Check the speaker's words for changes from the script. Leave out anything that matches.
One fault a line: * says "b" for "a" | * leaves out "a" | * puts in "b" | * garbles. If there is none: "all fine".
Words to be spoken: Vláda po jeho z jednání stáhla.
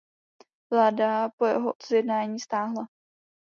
all fine